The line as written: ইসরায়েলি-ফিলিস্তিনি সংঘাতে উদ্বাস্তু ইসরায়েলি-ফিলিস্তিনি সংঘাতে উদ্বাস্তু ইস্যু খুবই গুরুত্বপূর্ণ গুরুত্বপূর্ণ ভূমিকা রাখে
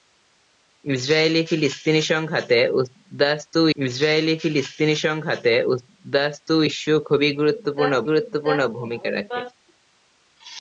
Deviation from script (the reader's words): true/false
false